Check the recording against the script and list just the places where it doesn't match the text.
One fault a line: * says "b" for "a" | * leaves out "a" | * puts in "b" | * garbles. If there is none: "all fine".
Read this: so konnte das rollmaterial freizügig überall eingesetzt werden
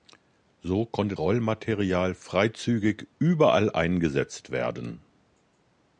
* leaves out "das"